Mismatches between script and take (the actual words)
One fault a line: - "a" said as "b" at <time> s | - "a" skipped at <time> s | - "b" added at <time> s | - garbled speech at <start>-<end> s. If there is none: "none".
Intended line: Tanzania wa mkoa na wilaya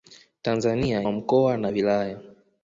none